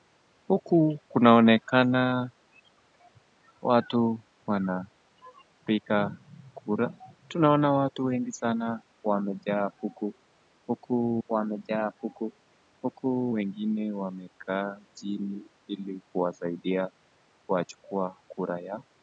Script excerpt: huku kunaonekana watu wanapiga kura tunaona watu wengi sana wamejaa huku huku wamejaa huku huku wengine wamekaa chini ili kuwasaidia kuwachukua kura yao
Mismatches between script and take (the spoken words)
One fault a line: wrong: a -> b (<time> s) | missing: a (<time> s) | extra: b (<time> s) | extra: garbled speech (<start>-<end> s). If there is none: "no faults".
no faults